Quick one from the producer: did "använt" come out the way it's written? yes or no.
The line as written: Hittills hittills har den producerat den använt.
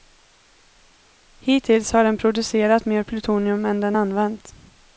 yes